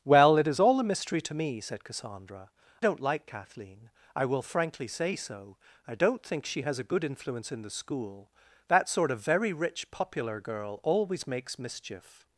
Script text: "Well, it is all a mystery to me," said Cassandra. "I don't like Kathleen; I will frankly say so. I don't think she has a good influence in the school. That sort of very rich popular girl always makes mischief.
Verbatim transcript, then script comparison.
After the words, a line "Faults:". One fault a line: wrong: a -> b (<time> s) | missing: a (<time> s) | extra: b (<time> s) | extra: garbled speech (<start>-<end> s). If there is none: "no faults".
"Well, it is all a mystery to me," said Cassandra. "don't like Kathleen; I will frankly say so. I don't think she has a good influence in the school. That sort of very rich popular girl always makes mischief.
Faults:
missing: I (2.5 s)